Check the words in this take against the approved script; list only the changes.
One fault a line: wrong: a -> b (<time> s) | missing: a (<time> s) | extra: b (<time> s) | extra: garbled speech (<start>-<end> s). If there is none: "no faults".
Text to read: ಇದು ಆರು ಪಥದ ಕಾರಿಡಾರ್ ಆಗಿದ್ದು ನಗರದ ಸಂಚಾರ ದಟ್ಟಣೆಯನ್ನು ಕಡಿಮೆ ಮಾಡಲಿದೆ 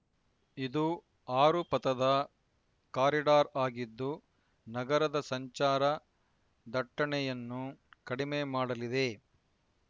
no faults